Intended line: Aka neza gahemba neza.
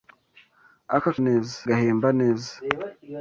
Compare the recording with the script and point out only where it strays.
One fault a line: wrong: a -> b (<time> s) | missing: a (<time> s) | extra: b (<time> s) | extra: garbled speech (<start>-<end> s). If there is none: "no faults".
no faults